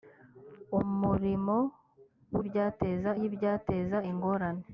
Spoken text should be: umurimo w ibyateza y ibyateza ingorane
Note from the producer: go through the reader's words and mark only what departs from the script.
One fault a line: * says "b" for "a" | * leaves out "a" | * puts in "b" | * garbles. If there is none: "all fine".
all fine